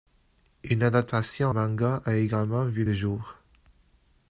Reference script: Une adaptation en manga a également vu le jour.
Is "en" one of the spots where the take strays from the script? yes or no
yes